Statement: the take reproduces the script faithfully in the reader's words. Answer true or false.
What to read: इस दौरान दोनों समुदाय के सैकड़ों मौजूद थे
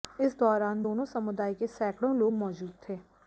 false